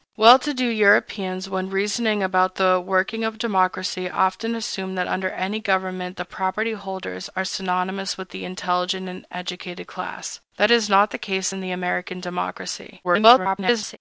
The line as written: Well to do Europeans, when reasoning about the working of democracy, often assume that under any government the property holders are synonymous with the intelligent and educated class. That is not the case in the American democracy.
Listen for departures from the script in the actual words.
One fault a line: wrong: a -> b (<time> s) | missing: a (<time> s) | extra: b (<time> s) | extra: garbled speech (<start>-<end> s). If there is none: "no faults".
extra: garbled speech (13.0-14.0 s)